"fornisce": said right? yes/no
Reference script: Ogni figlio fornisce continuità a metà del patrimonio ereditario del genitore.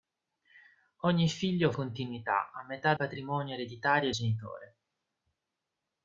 no